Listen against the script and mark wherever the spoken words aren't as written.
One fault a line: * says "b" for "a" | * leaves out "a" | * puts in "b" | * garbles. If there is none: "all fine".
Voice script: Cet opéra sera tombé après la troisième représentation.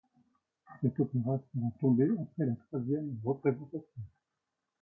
all fine